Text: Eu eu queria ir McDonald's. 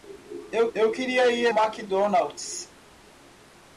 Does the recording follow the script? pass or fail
pass